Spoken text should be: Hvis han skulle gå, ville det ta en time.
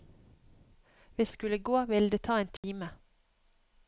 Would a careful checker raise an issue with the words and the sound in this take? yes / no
yes